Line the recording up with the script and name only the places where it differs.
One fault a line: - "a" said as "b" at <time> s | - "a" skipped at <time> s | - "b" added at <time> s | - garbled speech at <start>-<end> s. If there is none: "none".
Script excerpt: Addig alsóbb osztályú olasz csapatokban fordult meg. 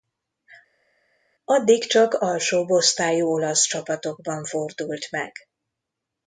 - "csak" added at 1.8 s